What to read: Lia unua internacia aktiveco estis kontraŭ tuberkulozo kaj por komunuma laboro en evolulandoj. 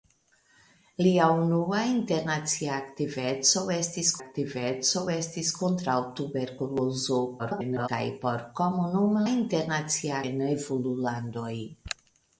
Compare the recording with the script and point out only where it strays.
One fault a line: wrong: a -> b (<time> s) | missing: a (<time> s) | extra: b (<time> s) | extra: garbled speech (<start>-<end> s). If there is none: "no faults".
extra: aktiveco estis (4.2 s)
extra: garbled speech (7.4-7.9 s)
wrong: laboro -> internacia (9.3 s)